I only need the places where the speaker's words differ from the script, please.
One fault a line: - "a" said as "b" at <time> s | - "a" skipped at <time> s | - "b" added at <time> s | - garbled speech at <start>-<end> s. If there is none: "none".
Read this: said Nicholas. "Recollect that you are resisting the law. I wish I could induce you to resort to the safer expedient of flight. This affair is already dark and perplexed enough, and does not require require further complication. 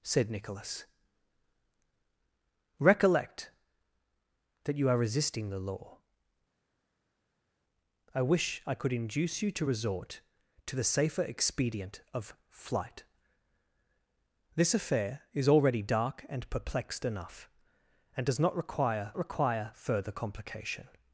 none